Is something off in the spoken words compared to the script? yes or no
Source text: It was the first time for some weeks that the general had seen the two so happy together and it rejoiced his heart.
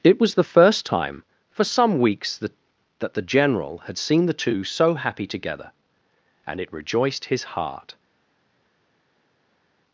yes